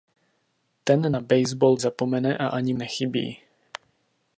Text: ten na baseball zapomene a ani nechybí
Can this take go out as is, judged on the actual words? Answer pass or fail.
pass